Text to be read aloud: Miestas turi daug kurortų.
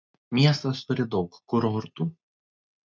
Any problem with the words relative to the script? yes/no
no